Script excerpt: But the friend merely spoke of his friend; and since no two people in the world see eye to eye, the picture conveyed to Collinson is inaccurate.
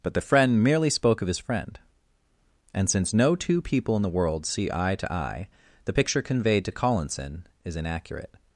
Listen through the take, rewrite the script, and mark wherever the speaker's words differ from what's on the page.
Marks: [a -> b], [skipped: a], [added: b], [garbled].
But the friend merely spoke of his friend; and since no two people in the world see eye to eye, the picture conveyed to Collinson is inaccurate.